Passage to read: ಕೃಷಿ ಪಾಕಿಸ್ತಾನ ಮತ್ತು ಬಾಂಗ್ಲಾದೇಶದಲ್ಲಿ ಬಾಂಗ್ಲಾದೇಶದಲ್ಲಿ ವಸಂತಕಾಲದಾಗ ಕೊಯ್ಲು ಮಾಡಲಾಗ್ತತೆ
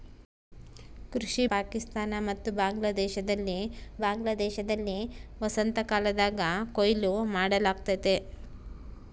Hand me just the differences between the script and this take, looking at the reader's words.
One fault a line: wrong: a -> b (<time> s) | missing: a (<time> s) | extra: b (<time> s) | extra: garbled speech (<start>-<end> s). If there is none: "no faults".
no faults